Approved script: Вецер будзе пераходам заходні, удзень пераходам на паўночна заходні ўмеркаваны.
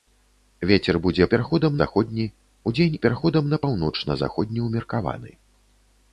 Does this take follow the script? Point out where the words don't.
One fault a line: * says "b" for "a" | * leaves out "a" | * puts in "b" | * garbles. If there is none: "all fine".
all fine